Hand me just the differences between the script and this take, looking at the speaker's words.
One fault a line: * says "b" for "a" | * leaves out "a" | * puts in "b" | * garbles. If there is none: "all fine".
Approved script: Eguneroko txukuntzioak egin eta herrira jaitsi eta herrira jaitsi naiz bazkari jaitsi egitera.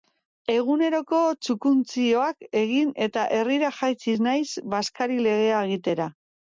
* leaves out "eta herrira jaitsi"
* says "legea" for "jaitsi"